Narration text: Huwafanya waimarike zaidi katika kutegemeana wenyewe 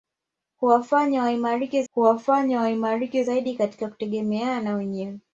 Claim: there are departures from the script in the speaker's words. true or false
true